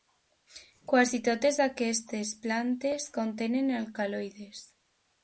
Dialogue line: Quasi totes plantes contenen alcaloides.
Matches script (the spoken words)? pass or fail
fail